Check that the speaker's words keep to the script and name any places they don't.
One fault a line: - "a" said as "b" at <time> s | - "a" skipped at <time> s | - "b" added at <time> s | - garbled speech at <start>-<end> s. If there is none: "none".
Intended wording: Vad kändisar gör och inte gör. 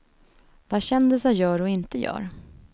none